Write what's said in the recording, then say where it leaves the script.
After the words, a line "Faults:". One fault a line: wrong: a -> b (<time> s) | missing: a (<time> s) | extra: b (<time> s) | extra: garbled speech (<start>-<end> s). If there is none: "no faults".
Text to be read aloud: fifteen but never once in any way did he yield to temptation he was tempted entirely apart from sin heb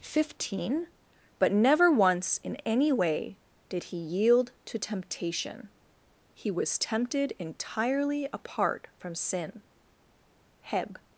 fifteen but never once in any way did he yield to temptation he was tempted entirely apart from sin heb
Faults:
no faults